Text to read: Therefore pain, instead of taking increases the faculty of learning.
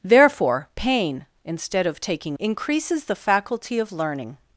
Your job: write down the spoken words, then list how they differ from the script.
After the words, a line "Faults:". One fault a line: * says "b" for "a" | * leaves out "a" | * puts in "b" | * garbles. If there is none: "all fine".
Therefore pain, instead of taking increases the faculty of learning.
Faults:
all fine